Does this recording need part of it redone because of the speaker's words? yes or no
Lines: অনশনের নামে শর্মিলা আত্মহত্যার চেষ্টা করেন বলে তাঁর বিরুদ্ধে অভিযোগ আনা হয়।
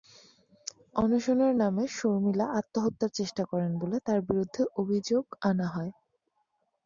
no